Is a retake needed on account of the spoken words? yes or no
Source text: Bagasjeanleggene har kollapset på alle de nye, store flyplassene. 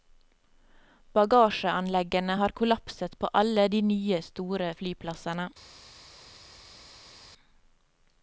no